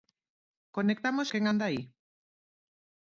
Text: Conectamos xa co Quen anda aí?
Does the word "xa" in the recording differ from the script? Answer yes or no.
yes